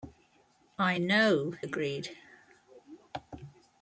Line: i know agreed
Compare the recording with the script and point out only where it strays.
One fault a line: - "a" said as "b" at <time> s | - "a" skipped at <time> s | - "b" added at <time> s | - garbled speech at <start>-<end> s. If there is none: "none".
none